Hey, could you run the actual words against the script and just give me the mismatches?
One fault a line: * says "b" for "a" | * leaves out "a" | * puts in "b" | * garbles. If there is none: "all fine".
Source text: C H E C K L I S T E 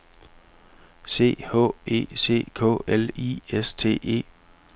all fine